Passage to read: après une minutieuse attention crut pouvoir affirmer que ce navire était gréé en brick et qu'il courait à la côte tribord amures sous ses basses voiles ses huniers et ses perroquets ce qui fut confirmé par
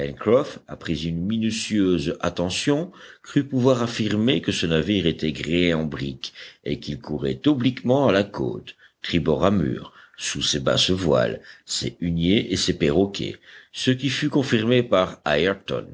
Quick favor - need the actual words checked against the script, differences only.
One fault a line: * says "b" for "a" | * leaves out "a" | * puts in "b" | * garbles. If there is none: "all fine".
* puts in "obliquement"